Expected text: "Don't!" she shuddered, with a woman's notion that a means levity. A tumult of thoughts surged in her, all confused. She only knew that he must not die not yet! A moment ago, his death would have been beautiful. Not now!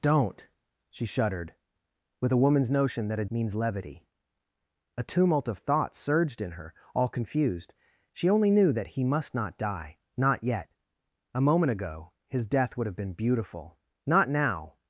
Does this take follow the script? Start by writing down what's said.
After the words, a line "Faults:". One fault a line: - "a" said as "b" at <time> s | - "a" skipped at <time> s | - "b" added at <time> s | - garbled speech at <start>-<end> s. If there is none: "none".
"Don't!" she shuddered, with a woman's notion that a means levity. A tumult of thoughts surged in her, all confused. She only knew that he must not die not yet! A moment ago, his death would have been beautiful. Not now!
Faults:
none